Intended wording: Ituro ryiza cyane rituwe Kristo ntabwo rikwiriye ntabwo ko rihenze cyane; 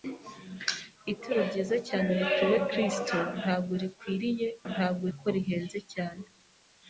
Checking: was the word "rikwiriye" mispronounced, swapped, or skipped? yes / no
no